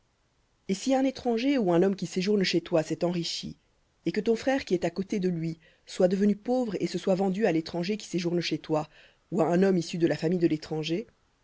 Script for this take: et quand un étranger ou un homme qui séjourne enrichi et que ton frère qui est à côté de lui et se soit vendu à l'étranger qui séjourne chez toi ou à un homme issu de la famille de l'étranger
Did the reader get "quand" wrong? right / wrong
wrong